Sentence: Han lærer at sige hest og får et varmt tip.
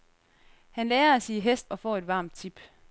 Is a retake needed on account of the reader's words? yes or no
no